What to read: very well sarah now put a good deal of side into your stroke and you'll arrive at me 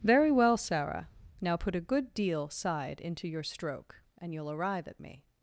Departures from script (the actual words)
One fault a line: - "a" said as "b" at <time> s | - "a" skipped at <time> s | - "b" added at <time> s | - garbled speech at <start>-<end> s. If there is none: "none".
- "of" skipped at 2.5 s